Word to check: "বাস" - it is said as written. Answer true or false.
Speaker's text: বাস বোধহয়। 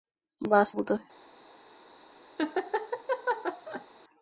true